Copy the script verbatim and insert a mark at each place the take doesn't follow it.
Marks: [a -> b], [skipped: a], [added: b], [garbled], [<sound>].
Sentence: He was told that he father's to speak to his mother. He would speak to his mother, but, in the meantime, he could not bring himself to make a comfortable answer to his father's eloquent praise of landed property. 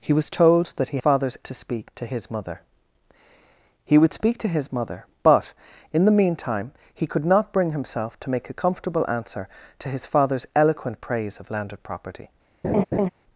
He was told that he father's to speak to his mother. He would speak to his mother, but, in the meantime, he could not bring himself to make a comfortable answer to his father's eloquent praise of landed property. [laugh]